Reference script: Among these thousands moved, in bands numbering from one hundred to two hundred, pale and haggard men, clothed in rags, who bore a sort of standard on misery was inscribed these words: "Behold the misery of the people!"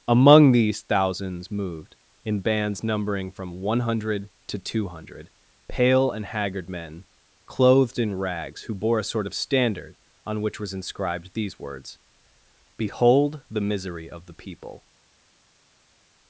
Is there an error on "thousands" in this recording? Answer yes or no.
no